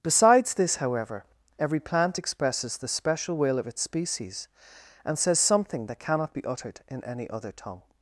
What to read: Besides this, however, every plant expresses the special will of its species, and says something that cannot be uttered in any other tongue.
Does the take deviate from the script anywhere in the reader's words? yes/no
no